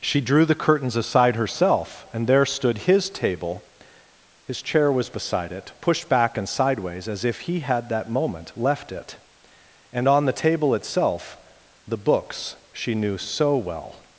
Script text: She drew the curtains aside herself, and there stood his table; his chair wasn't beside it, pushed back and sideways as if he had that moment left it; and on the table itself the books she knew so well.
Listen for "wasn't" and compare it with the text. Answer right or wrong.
wrong